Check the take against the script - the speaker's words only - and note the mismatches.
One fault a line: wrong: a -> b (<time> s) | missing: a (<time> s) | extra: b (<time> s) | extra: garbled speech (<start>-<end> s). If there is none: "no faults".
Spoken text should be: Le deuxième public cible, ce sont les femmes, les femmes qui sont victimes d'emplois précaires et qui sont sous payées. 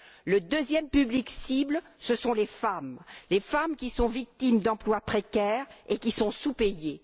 no faults